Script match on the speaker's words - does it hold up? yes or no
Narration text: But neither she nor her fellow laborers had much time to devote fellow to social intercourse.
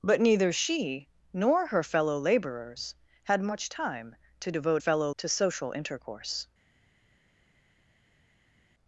yes